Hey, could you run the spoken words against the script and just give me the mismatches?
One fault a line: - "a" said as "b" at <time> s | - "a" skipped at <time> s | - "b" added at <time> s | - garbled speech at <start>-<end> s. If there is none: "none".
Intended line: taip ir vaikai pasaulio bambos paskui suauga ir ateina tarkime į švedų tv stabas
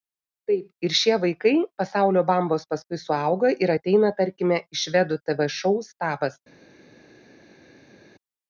- "šie" added at 1.0 s
- "šou" added at 5.6 s